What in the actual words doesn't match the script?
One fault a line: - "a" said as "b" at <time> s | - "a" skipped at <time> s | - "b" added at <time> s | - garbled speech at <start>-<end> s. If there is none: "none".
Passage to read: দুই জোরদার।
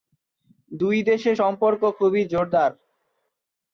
- "দেশের সম্পর্ক খুবই" added at 1.0 s